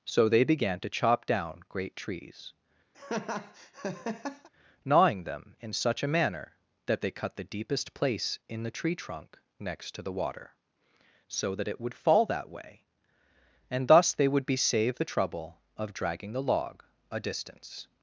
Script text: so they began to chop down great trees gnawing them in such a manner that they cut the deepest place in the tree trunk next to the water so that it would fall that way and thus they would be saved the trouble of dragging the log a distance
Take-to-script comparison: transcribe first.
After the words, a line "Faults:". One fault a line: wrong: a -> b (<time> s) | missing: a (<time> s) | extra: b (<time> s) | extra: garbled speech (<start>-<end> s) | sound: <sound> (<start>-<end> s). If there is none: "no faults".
so they began to chop down great trees gnawing them in such a manner that they cut the deepest place in the tree trunk next to the water so that it would fall that way and thus they would be saved the trouble of dragging the log a distance
Faults:
sound: laugh (2.9-4.5 s)